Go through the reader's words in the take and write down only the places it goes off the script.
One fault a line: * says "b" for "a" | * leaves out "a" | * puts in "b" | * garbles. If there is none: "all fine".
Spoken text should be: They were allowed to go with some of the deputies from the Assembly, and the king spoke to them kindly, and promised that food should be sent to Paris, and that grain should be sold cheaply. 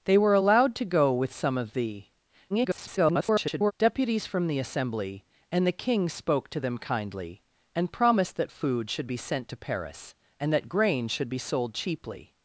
* garbles